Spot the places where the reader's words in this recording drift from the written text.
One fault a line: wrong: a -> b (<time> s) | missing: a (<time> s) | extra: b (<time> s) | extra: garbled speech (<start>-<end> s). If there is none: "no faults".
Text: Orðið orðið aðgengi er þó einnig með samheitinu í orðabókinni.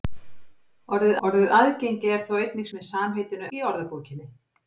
no faults